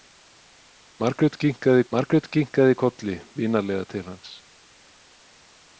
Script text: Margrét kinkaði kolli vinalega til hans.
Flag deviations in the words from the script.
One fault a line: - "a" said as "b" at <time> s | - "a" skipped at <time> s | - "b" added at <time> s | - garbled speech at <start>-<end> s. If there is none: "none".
- "margrét kinkaði" added at 1.9 s